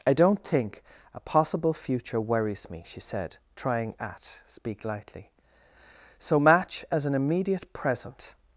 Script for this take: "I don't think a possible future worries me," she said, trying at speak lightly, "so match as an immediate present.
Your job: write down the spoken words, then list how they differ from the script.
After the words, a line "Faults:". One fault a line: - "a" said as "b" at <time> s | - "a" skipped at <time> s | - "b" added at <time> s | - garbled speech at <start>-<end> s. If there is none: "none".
"I don't think a possible future worries me," she said, trying at speak lightly, "so match as an immediate present.
Faults:
none